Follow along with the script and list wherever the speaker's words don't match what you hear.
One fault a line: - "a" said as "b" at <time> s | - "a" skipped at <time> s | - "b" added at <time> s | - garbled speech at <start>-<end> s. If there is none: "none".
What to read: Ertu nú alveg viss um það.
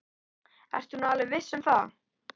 none